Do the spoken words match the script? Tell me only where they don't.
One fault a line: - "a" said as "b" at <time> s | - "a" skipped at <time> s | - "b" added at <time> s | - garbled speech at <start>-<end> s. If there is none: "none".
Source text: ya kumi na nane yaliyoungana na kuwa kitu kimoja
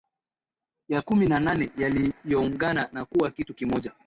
none